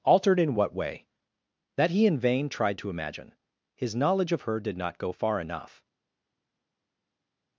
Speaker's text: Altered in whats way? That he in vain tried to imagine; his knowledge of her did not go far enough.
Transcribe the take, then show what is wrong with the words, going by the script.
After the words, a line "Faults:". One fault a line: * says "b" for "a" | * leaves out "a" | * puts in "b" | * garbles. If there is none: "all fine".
Altered in what way? That he in vain tried to imagine; his knowledge of her did not go far enough.
Faults:
* says "what" for "whats"